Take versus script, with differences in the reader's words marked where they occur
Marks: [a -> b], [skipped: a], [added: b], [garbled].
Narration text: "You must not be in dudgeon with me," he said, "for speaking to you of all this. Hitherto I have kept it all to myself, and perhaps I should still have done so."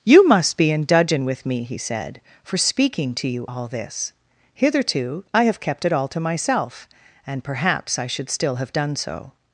"You must [skipped: not] be in dudgeon with me," he said, "for speaking to you [skipped: of] all this. Hitherto I have kept it all to myself, and perhaps I should still have done so."